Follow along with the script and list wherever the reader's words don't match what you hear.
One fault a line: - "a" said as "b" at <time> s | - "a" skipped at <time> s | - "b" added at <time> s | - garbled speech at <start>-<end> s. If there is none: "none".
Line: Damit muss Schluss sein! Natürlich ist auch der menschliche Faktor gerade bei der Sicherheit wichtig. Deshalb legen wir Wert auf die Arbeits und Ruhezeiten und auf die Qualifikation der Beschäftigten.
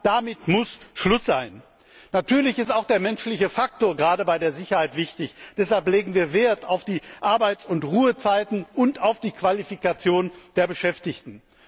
none